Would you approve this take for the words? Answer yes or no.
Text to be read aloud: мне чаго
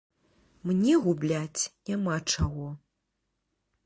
no